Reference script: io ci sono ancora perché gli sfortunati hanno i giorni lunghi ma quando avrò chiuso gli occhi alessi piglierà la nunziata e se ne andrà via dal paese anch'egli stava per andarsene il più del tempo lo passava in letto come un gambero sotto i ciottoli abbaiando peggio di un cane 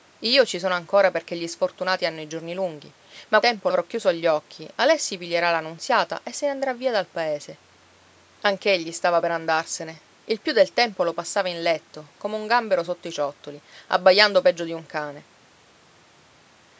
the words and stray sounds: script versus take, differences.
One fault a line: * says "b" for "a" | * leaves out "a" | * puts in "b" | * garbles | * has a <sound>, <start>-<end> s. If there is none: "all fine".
* says "tempo" for "quando"